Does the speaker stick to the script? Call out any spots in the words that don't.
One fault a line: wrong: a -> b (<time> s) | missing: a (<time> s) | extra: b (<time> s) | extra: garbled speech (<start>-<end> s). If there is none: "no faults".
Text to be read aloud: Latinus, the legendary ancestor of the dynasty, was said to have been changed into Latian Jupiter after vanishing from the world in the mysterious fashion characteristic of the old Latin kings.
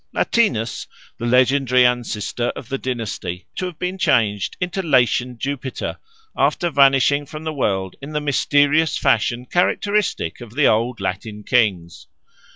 missing: was said (3.5 s)